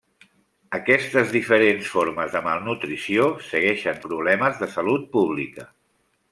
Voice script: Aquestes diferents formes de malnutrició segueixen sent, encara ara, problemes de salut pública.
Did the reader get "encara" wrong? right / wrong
wrong